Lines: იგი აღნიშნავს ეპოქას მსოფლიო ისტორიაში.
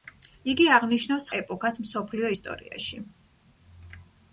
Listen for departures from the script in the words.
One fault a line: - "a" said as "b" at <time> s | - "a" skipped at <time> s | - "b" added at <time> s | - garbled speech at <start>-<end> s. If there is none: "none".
none